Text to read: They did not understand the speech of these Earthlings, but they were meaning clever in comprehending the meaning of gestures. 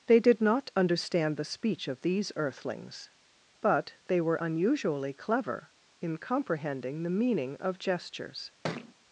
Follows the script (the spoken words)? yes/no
no